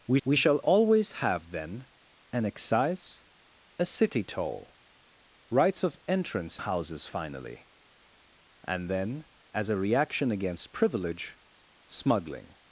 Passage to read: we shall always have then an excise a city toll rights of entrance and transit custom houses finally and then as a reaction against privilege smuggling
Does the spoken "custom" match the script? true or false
false